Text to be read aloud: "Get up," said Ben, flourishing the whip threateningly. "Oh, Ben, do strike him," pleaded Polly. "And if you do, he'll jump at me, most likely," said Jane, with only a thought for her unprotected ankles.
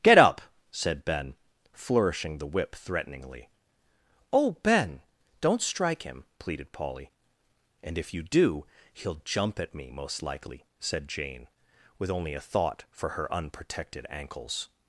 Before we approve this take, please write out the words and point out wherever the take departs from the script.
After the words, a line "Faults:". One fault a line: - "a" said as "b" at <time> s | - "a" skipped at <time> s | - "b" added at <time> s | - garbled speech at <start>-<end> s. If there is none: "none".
"Get up," said Ben, flourishing the whip threateningly. "Oh, Ben, don't strike him," pleaded Polly. "And if you do, he'll jump at me, most likely," said Jane, with only a thought for her unprotected ankles.
Faults:
- "do" said as "don't" at 5.4 s